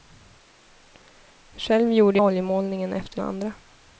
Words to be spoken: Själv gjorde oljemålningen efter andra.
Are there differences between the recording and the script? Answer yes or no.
no